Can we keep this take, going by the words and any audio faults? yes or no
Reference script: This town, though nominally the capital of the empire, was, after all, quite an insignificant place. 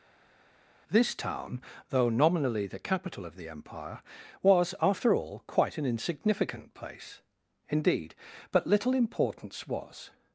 no